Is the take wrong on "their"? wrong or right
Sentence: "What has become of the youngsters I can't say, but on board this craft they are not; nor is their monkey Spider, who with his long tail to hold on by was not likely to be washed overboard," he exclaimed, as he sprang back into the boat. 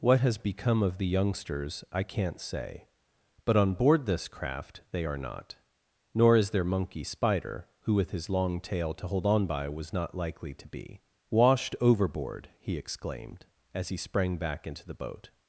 right